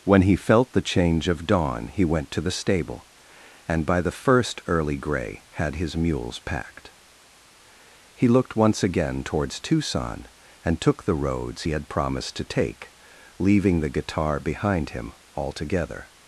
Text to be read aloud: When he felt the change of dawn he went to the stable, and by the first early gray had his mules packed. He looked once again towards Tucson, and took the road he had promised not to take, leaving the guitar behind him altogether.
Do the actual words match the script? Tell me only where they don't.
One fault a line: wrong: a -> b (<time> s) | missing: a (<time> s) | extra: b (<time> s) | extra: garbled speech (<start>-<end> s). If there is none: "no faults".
wrong: road -> roads (11.2 s)
missing: not (12.4 s)